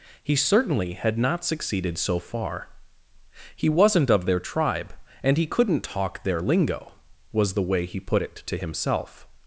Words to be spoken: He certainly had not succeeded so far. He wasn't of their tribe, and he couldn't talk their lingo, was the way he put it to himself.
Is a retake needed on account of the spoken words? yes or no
no